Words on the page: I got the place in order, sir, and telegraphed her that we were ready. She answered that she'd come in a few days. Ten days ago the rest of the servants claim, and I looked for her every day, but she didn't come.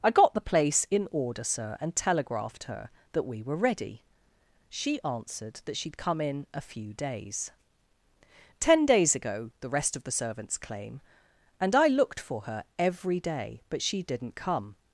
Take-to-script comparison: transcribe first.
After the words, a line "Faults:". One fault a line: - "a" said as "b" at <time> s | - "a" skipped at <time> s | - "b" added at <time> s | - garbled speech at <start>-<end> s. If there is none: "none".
I got the place in order, sir, and telegraphed her that we were ready. She answered that she'd come in a few days. Ten days ago the rest of the servants claim, and I looked for her every day, but she didn't come.
Faults:
none